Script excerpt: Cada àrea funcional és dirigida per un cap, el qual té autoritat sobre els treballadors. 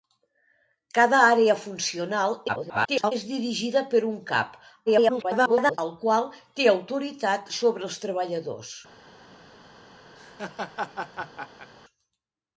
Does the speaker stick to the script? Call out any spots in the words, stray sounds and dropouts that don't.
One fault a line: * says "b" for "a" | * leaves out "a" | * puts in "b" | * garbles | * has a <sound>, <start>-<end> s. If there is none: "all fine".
* garbles
* garbles
* has a laugh, 10.1-11.7 s